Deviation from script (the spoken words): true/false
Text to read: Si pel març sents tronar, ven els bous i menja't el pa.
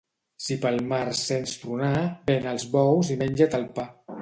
false